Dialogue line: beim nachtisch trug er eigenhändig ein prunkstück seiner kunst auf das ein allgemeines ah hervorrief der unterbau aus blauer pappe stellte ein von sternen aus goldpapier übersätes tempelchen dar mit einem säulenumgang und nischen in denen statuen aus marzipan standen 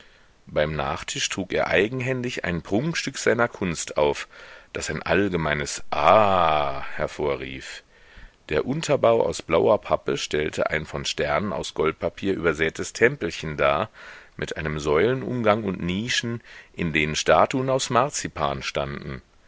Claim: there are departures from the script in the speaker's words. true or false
false